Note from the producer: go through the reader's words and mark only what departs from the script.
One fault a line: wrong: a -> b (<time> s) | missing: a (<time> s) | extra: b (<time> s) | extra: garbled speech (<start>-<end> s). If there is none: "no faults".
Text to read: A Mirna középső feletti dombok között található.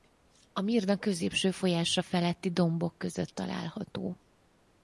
extra: folyása (1.5 s)